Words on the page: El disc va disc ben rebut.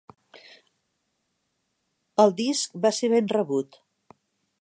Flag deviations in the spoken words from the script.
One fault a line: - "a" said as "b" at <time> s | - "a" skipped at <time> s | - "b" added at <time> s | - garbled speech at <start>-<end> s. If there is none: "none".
- "disc" said as "ser" at 3.0 s